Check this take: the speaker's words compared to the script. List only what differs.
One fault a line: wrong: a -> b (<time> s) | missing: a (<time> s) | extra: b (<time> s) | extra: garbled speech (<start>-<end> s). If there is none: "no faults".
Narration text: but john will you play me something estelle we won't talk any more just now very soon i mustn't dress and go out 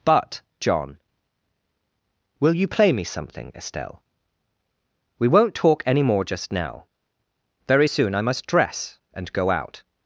wrong: mustn't -> must (8.2 s)